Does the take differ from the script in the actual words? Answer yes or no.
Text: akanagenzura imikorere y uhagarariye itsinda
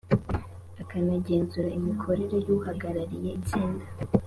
no